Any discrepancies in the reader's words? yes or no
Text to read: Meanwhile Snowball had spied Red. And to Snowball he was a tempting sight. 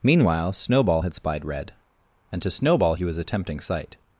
no